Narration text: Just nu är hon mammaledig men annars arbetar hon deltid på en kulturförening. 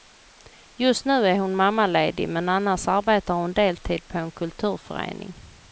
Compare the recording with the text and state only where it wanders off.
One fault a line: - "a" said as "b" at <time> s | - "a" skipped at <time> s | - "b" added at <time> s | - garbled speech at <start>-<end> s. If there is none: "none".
none